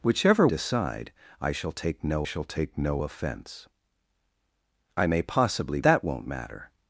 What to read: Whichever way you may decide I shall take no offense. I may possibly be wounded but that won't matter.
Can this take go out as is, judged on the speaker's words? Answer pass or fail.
fail